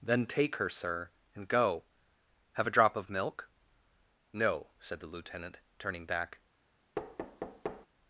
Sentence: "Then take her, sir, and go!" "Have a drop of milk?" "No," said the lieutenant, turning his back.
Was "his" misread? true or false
true